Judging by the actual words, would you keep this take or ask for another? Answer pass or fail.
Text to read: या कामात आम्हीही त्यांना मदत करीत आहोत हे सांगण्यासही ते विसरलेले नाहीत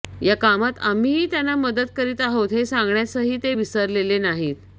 pass